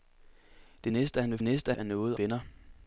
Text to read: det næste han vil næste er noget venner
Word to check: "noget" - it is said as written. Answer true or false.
true